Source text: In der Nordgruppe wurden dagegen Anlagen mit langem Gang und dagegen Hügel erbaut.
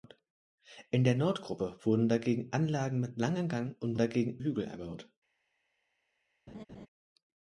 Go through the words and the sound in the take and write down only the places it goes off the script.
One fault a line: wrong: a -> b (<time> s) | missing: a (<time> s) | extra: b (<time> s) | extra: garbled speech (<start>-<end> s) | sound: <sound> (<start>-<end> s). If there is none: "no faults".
sound: laugh (6.5-6.9 s)